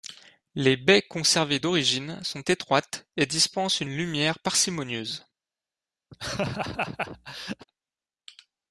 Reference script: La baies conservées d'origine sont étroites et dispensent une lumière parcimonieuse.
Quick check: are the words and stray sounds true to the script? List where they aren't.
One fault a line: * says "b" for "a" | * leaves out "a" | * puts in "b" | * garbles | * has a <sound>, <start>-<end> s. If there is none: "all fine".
* says "Les" for "La"
* has a laugh, 6.1-7.7 s